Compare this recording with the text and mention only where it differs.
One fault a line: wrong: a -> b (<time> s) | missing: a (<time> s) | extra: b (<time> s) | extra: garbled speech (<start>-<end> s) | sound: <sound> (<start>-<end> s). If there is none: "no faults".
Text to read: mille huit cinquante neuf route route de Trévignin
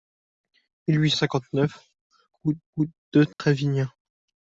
sound: dropout (3.3-3.4 s)